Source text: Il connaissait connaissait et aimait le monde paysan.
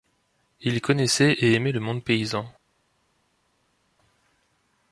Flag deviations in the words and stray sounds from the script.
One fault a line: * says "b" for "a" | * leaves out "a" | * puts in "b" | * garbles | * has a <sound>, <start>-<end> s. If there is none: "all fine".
* leaves out "connaissait"